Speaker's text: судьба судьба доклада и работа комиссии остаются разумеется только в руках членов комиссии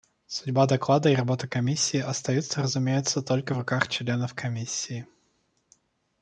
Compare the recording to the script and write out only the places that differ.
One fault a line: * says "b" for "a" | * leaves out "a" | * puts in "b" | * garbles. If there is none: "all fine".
* leaves out "судьба"